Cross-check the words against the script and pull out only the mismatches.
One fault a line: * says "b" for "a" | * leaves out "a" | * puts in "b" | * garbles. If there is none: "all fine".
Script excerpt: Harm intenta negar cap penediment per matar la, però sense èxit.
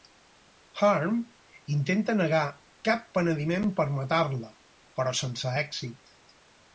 all fine